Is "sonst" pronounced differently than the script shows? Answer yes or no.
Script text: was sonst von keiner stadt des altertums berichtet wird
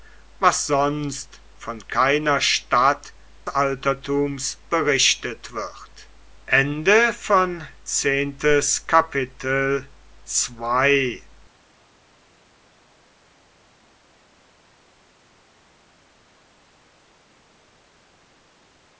no